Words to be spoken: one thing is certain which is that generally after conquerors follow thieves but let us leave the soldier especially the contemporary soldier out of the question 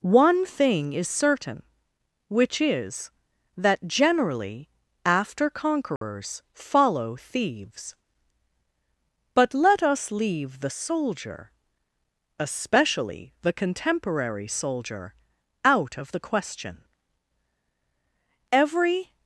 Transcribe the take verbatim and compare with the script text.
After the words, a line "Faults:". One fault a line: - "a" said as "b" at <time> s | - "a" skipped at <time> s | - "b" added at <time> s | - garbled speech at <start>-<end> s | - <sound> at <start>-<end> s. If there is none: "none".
one thing is certain which is that generally after conquerors follow thieves but let us leave the soldier especially the contemporary soldier out of the question every
Faults:
- dropout at 6.0-6.0 s
- "every" added at 18.5 s